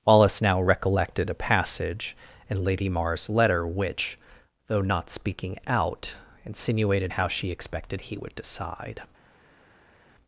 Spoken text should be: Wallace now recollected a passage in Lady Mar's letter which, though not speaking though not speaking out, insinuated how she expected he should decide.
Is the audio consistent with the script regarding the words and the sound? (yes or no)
no